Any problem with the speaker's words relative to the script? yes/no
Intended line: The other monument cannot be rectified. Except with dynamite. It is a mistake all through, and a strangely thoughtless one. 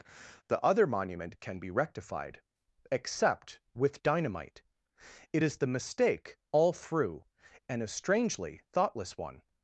yes